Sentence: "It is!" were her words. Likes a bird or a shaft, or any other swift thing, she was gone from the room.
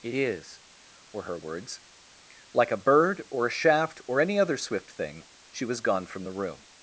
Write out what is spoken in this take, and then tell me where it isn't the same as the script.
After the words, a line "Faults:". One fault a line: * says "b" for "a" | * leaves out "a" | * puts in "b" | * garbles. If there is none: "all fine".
"It is!" were her words. Like a bird or a shaft, or any other swift thing, she was gone from the room.
Faults:
* says "Like" for "Likes"